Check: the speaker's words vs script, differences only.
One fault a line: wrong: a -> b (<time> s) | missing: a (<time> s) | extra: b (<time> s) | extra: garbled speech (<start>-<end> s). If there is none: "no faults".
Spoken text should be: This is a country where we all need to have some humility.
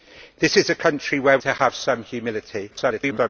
missing: we all need (1.4 s)
extra: garbled speech (2.7-3.3 s)